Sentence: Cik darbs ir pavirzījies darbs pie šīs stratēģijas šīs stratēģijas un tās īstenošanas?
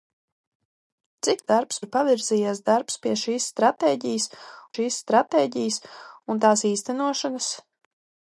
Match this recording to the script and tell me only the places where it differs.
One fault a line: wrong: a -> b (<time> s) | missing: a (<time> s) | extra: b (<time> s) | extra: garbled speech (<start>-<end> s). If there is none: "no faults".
no faults